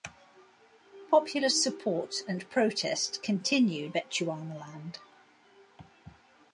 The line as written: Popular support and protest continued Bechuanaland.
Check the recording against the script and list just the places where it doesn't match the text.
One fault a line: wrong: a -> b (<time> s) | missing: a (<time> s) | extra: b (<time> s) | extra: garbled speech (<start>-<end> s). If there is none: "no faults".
no faults